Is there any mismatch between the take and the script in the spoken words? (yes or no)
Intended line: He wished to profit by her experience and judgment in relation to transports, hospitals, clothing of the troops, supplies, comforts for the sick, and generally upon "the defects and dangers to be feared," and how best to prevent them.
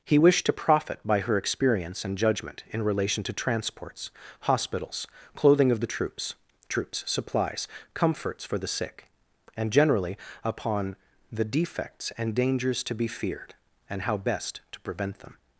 yes